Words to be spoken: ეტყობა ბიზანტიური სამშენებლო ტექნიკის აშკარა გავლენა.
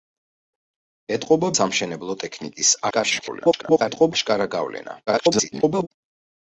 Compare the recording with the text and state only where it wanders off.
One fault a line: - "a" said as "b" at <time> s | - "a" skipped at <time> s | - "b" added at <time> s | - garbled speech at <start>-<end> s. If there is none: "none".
- "ბიზანტიური" skipped at 1.5 s
- garbled speech at 2.9-4.1 s
- garbled speech at 5.1-5.9 s